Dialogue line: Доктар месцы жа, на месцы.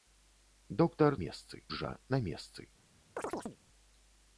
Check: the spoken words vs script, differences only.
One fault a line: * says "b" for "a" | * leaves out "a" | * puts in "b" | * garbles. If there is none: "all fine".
all fine